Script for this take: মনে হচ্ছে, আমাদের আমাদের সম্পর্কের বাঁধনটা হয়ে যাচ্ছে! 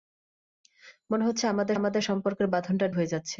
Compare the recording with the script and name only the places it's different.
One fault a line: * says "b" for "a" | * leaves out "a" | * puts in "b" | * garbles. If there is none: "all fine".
all fine